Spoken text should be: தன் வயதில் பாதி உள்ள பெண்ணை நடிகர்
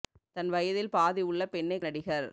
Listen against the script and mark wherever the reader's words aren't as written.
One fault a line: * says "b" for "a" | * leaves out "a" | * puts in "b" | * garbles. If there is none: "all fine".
all fine